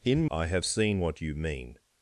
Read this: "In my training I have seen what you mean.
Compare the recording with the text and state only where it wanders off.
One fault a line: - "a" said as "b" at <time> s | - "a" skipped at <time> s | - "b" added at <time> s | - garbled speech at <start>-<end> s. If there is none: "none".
- "my training" skipped at 0.2 s